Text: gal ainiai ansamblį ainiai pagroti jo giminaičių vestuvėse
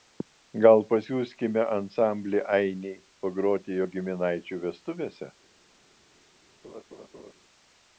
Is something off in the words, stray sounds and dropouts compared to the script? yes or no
yes